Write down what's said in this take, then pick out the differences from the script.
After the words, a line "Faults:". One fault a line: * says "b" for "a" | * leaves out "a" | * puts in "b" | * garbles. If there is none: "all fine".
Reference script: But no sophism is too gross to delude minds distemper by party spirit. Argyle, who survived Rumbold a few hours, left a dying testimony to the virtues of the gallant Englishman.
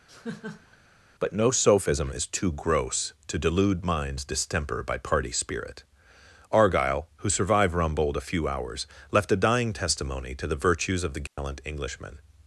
But no sophism is too gross to delude minds distemper by party spirit. Argyle, who survived Rumbold a few hours, left a dying testimony to the virtues of the gallant Englishman.
Faults:
all fine